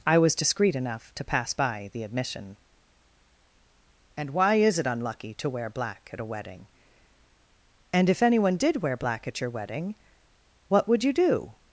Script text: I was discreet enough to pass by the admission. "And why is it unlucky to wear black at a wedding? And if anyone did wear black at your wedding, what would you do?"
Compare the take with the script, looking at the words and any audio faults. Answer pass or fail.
pass